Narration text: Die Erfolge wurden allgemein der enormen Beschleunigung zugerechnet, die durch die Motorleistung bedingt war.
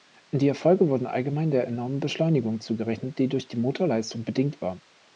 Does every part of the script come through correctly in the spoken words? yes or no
yes